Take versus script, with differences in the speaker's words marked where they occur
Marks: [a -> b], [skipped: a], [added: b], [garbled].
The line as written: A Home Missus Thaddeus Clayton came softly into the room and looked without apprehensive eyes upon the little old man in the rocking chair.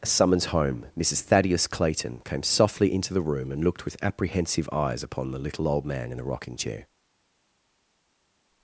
A [added: Summons] Home Missus Thaddeus Clayton came softly into the room and looked [without -> with] apprehensive eyes upon the little old man in the rocking chair.